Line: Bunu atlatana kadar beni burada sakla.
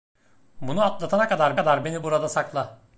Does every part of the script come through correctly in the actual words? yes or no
no